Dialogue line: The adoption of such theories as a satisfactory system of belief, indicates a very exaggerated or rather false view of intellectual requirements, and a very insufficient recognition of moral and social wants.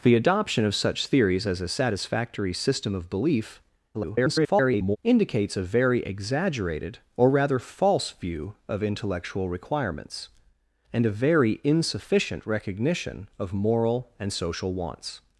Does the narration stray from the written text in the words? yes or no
yes